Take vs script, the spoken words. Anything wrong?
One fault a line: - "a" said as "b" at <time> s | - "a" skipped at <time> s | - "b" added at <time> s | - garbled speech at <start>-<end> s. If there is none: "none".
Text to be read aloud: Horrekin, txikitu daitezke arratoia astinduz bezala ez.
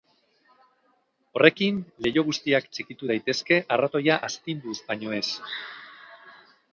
- "leiho guztiak" added at 2.0 s
- "bezala" said as "baino" at 4.9 s